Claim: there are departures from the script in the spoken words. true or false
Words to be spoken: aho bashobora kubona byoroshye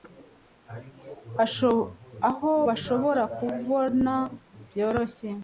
false